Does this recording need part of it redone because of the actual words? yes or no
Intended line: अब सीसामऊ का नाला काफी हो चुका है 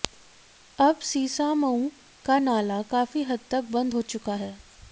yes